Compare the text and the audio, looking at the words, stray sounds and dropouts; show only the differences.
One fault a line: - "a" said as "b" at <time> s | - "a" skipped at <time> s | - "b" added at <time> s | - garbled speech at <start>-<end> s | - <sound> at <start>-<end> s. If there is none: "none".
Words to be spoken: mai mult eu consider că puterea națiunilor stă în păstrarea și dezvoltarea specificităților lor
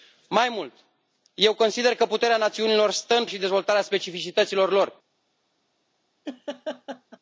- "păstrarea" skipped at 3.2 s
- laugh at 6.2-7.2 s